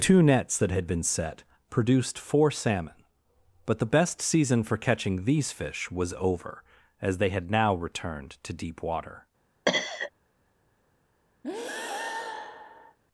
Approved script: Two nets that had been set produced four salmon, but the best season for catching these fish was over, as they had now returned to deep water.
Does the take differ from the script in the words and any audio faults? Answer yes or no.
yes